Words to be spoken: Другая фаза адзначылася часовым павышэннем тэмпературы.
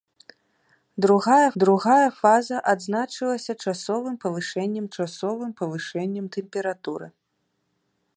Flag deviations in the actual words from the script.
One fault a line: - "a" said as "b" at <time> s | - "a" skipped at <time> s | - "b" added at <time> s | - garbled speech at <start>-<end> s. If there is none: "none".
- "другая" added at 1.6 s
- "часовым павышэннем" added at 5.0 s